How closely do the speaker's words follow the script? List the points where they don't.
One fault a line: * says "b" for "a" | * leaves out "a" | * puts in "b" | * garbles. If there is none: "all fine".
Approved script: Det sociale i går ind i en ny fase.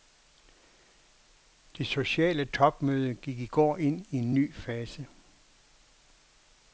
* puts in "topmøde gik"